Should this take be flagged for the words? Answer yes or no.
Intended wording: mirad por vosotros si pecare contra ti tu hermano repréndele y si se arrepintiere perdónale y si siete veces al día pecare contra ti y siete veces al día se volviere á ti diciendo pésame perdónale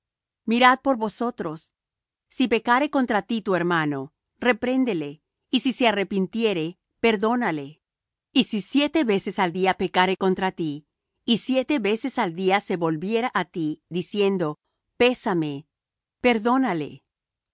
no